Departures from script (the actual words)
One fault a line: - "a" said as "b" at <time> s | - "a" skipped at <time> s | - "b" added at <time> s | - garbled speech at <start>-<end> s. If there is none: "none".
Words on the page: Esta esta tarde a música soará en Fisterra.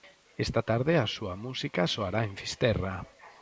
- "esta" skipped at 0.6 s
- "súa" added at 1.1 s